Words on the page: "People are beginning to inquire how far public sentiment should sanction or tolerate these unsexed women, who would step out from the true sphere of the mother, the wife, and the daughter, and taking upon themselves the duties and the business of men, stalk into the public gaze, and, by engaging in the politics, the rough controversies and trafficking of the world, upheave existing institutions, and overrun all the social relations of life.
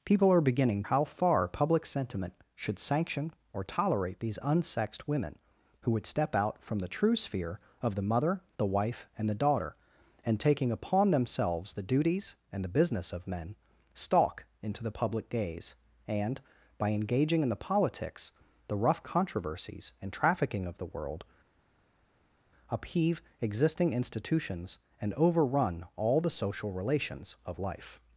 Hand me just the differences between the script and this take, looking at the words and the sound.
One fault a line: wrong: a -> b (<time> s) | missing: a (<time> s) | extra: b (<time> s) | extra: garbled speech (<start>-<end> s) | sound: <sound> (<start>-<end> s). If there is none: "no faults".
missing: to inquire (0.8 s)